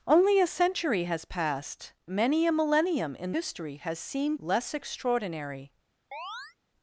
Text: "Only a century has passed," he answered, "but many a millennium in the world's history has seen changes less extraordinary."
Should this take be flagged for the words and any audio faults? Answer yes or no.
yes